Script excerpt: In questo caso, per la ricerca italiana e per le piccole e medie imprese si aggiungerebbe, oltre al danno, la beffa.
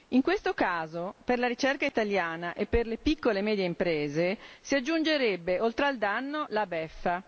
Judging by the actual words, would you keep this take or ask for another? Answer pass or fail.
pass